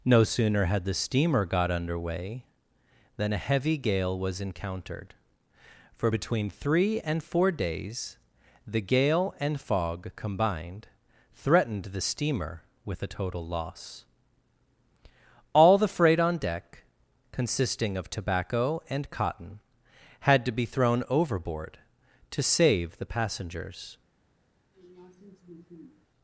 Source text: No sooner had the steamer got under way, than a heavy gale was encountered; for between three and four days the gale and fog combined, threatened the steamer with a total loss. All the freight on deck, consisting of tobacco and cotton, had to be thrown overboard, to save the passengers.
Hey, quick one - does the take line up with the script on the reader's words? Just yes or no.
yes